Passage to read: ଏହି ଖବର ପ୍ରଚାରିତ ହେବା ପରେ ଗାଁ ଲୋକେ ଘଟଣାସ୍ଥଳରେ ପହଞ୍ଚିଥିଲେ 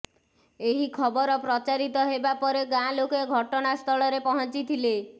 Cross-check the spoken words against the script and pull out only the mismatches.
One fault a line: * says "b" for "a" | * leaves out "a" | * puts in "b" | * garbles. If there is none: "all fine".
all fine